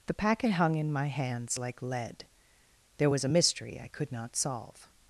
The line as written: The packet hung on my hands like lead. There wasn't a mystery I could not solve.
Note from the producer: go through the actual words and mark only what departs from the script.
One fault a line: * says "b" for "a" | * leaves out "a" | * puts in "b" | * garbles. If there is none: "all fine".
* says "in" for "on"
* says "was" for "wasn't"